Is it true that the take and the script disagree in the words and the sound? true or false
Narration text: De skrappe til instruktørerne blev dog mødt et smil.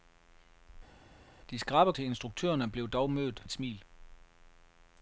false